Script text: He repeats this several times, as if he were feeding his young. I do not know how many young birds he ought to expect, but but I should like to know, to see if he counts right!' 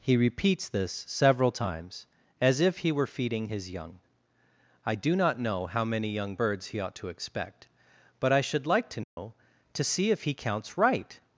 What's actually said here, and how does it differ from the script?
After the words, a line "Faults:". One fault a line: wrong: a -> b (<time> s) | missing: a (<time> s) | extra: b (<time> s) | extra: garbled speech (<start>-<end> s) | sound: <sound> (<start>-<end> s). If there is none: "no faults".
He repeats this several times, as if he were feeding his young. I do not know how many young birds he ought to expect, but I should like to know, to see if he counts right!'
Faults:
missing: but (8.3 s)
sound: dropout (9.0-9.2 s)